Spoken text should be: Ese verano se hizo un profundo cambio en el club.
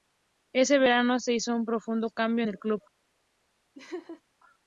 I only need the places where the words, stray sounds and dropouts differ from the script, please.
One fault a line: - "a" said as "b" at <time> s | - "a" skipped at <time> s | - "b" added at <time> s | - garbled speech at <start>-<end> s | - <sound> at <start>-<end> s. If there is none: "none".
- laugh at 3.8-4.2 s